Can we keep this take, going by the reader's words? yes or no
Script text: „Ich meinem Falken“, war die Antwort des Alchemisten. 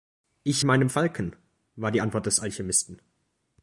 yes